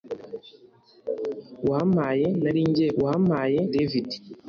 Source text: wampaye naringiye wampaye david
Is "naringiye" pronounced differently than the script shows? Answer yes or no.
no